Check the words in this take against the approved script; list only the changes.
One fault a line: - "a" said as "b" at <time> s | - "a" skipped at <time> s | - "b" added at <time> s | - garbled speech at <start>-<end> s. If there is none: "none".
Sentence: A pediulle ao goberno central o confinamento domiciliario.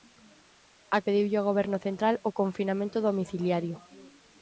none